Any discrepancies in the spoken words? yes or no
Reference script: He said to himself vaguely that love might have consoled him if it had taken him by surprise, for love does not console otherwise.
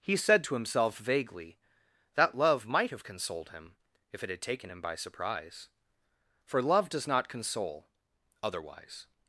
no